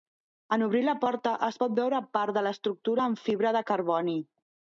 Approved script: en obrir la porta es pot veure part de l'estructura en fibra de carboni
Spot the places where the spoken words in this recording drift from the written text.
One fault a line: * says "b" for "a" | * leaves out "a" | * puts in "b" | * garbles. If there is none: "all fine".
all fine